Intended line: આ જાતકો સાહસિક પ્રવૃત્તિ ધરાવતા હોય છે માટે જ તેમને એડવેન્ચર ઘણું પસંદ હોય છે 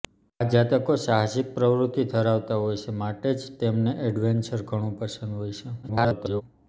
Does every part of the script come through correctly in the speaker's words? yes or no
no